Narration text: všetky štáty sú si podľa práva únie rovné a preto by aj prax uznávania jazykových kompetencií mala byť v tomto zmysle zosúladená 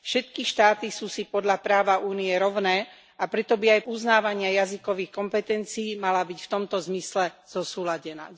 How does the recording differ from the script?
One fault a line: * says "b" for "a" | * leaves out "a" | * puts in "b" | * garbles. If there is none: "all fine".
* leaves out "prax"